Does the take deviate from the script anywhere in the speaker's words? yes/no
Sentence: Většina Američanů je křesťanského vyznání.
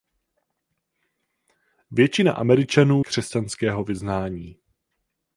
yes